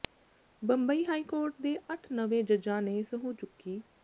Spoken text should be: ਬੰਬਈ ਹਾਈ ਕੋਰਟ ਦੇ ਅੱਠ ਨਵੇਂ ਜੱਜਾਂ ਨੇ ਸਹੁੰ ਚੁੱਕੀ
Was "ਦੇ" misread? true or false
false